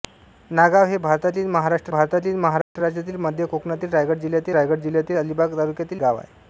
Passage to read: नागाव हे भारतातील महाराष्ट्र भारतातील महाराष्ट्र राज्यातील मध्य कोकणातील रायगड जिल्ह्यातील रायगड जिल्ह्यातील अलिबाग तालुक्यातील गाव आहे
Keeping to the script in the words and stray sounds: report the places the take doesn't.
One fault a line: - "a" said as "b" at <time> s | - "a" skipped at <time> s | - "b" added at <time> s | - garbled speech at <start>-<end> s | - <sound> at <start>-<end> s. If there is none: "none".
- dropout at 2.6-2.8 s